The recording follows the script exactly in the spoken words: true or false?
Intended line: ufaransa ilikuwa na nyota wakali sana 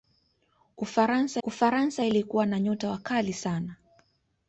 false